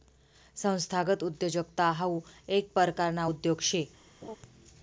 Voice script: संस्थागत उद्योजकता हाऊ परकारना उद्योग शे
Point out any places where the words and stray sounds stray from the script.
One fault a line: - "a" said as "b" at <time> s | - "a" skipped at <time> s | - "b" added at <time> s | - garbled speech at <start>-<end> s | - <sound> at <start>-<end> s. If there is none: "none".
- "येक" added at 2.5 s
- laugh at 4.2-4.4 s